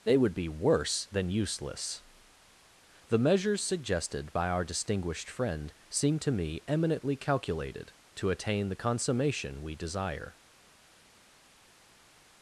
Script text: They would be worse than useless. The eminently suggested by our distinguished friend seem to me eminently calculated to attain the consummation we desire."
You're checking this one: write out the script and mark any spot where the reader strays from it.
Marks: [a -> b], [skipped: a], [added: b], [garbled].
They would be worse than useless. The [eminently -> measures] suggested by our distinguished friend seem to me eminently calculated to attain the consummation we desire."